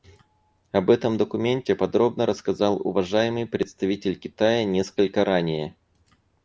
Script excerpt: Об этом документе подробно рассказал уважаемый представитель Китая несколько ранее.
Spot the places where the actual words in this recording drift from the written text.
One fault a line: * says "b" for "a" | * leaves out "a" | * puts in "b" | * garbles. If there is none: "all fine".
all fine